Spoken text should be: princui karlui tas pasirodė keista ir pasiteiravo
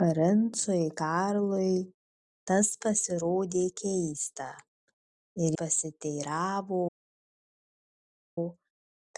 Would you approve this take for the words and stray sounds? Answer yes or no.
yes